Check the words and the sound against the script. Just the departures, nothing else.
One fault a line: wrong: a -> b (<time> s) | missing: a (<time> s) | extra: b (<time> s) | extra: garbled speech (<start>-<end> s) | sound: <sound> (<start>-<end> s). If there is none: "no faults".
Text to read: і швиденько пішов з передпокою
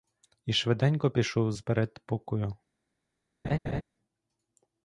sound: laugh (3.4-3.8 s)